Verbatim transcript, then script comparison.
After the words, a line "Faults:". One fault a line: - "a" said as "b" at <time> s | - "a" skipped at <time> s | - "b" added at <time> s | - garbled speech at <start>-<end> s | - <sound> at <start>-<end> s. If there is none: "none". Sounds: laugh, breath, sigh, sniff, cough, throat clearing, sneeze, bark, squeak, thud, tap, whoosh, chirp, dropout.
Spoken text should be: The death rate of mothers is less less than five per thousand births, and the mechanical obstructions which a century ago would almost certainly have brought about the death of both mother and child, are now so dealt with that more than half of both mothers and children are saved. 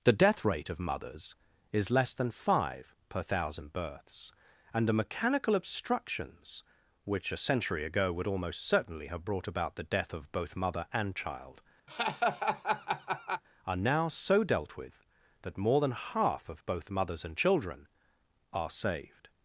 The death rate of mothers is less than five per thousand births, and the mechanical obstructions which a century ago would almost certainly have brought about the death of both mother and child, are now so dealt with that more than half of both mothers and children are saved.
Faults:
- "less" skipped at 2.1 s
- laugh at 11.9-13.4 s